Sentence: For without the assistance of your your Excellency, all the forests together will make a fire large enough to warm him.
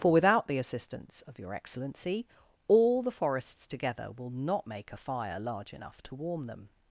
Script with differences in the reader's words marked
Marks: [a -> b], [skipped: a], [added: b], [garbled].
For without the assistance of your [skipped: your] Excellency, all the forests together will [added: not] make a fire large enough to warm [him. -> them]